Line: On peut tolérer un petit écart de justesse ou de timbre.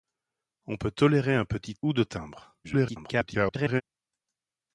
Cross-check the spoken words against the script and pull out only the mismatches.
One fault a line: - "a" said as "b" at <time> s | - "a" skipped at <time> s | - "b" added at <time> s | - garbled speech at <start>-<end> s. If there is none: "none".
- "écart de justesse" skipped at 1.8 s
- garbled speech at 2.6-3.8 s